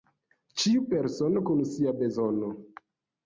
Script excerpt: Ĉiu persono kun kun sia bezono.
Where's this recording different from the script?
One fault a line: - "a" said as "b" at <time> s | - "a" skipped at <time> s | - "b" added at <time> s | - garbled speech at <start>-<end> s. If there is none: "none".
- "kun" skipped at 1.6 s